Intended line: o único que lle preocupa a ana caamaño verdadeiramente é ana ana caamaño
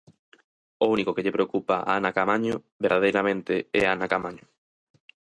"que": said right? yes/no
yes